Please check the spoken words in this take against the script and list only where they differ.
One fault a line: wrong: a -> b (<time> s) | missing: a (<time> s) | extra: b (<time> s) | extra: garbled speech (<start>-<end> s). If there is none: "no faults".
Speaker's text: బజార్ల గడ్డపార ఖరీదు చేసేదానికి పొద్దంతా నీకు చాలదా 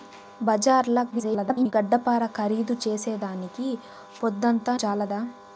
extra: garbled speech (1.1-1.7 s)
missing: నీకు (4.7 s)